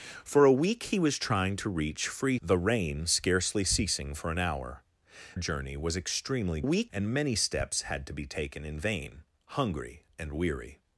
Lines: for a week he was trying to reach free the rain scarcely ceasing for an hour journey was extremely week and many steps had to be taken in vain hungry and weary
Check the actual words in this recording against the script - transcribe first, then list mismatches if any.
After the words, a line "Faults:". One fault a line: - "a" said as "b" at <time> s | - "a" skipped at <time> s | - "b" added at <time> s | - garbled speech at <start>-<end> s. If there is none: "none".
for a week he was trying to reach free the rain scarcely ceasing for an hour journey was extremely week and many steps had to be taken in vain hungry and weary
Faults:
none